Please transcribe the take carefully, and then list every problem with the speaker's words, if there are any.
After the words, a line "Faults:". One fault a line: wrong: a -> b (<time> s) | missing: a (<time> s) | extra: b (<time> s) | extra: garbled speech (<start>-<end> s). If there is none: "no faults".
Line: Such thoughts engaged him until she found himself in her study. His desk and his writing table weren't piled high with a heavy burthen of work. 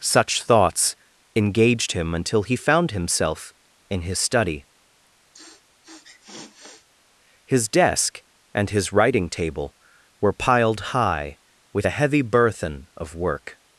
Such thoughts engaged him until he found himself in his study. His desk and his writing table were piled high with a heavy burthen of work.
Faults:
wrong: she -> he (2.4 s)
wrong: her -> his (4.0 s)
wrong: weren't -> were (10.2 s)